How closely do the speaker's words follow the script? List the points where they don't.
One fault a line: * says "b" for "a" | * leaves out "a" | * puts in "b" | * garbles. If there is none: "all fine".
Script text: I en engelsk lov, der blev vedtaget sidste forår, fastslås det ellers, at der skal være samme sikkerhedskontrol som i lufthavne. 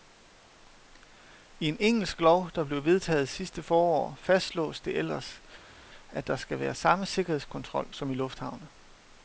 all fine